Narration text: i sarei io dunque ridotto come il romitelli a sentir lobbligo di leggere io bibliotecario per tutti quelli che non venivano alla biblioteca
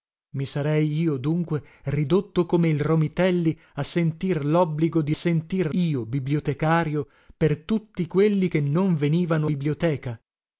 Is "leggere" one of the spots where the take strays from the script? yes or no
yes